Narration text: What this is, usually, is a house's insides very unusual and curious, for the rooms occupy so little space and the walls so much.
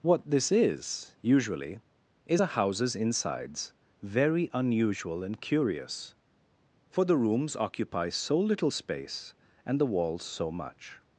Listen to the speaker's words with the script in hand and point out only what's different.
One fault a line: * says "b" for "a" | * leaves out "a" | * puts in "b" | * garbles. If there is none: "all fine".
all fine